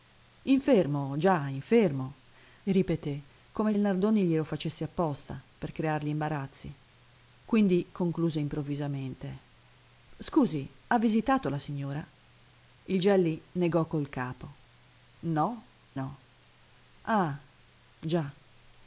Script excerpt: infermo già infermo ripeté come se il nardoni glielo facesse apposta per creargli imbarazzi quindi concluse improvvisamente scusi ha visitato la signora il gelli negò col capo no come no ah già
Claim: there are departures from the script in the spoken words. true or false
true